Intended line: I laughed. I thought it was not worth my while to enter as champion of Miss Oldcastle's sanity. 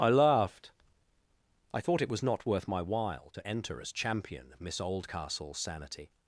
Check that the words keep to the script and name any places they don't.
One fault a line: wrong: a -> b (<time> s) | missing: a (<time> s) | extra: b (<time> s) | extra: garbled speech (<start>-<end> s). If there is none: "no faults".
no faults